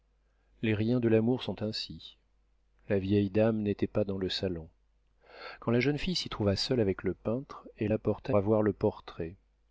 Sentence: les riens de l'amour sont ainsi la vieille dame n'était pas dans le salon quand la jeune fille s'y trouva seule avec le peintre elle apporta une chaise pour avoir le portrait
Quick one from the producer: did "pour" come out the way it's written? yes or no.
no